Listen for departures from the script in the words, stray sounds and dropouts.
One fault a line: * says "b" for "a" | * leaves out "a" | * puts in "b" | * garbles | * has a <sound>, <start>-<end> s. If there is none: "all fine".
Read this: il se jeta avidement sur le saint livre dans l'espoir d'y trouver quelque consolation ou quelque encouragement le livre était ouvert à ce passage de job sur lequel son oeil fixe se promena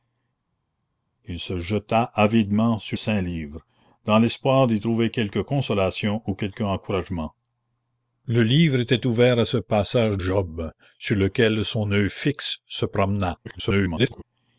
* leaves out "le"
* leaves out "de"
* garbles